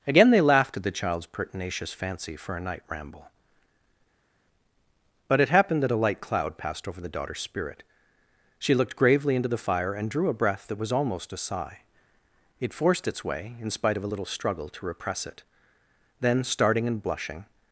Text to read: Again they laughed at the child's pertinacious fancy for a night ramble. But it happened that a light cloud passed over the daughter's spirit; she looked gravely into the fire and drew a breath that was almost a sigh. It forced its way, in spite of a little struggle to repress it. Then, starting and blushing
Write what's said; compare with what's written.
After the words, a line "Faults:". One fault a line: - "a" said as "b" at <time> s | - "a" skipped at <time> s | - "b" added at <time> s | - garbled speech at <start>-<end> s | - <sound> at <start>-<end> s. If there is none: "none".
Again they laughed at the child's pertinacious fancy for a night ramble. But it happened that a light cloud passed over the daughter's spirit; she looked gravely into the fire and drew a breath that was almost a sigh. It forced its way, in spite of a little struggle to repress it. Then, starting and blushing
Faults:
none